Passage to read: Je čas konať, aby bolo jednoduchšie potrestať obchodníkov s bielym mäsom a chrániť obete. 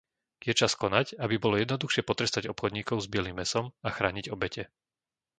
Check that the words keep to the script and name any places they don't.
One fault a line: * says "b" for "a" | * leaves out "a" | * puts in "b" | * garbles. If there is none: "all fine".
all fine